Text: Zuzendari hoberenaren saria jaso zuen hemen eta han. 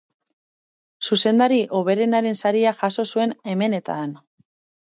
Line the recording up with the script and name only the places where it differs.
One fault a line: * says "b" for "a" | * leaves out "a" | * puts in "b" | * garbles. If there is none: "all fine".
all fine